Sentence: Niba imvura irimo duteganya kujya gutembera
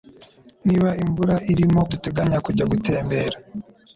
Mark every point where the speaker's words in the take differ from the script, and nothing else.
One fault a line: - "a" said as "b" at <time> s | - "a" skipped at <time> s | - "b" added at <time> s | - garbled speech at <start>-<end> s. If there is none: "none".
none